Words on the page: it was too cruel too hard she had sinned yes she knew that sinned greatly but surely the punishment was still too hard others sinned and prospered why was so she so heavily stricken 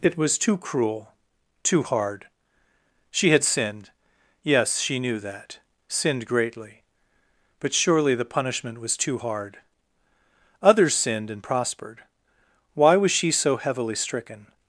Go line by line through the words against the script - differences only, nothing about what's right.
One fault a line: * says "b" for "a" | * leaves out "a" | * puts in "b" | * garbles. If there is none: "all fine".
* leaves out "still"
* leaves out "so"